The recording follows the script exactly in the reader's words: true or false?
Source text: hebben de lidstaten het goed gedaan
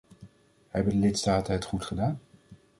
true